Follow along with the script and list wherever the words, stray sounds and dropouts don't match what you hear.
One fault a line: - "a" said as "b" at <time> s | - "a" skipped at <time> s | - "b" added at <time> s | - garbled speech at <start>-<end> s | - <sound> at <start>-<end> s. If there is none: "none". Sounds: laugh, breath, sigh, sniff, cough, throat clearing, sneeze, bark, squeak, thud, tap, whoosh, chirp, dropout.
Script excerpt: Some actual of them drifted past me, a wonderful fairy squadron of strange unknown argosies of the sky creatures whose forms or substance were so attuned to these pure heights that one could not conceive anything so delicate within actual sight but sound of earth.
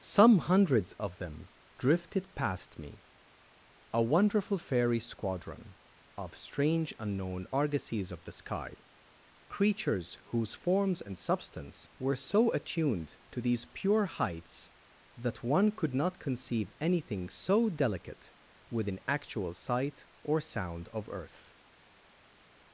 - "actual" said as "hundreds" at 0.4 s
- "or" said as "and" at 11.0 s
- "but" said as "or" at 20.2 s